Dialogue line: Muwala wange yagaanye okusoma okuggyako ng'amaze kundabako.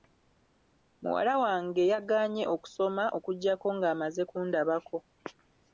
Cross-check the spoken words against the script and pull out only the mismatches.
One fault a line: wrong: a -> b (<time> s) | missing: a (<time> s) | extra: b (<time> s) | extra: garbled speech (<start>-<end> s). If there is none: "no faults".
no faults